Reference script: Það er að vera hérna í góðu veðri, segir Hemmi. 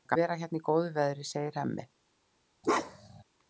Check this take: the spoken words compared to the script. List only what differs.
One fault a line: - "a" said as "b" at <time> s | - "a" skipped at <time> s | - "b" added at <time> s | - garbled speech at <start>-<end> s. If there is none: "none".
none